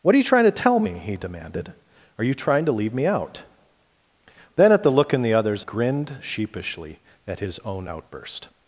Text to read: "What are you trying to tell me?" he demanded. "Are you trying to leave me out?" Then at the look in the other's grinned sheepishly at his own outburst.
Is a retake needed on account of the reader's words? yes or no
no